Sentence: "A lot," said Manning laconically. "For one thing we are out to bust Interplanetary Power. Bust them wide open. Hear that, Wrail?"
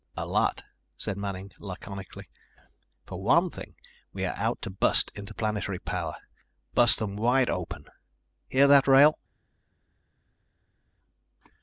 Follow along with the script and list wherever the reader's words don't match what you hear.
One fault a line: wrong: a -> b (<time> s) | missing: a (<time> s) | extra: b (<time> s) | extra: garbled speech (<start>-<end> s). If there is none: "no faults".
no faults